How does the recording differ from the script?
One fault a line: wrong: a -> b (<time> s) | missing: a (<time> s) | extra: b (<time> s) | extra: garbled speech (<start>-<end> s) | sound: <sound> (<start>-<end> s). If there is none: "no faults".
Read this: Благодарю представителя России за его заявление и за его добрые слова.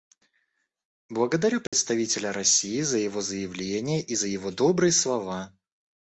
sound: dropout (1.7-1.7 s)